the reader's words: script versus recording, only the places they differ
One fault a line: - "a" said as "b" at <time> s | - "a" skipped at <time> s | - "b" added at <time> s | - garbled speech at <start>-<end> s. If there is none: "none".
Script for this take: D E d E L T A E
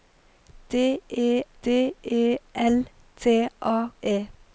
none